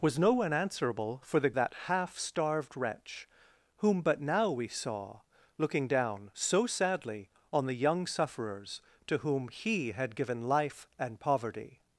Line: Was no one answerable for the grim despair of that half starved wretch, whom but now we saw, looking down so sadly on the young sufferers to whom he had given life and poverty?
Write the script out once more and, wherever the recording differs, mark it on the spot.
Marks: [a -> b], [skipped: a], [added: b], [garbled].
Was no one answerable for the [skipped: grim despair of] that half starved wretch, whom but now we saw, looking down so sadly on the young sufferers to whom he had given life and poverty?